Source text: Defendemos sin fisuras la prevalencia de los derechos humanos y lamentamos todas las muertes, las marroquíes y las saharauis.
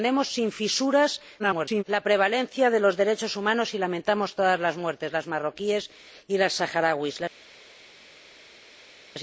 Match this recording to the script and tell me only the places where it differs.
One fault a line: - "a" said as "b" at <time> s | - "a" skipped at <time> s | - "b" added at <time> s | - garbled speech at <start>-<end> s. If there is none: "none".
- garbled speech at 1.4-1.8 s